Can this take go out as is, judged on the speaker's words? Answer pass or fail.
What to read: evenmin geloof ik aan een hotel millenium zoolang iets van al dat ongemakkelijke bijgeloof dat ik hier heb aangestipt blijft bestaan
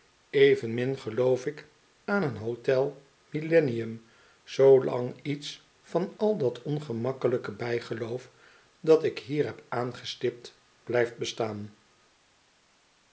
pass